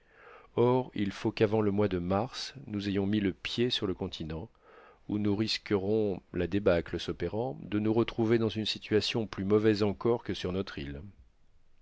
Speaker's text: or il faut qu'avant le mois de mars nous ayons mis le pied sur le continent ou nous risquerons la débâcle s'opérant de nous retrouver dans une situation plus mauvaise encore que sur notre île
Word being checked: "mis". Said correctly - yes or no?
yes